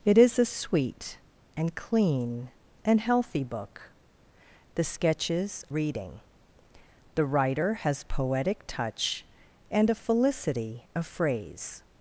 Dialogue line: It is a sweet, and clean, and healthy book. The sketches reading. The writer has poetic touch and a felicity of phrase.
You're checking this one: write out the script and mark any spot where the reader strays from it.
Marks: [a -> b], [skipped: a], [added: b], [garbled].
It is a sweet, and clean, and healthy book. The sketches reading. The writer has poetic touch and a felicity of phrase.